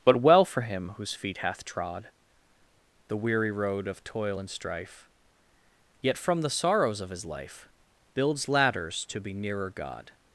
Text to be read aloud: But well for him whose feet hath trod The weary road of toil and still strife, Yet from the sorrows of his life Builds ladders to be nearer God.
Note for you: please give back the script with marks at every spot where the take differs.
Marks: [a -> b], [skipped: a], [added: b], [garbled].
But well for him whose feet hath trod The weary road of toil and [skipped: still] strife, Yet from the sorrows of his life Builds ladders to be nearer God.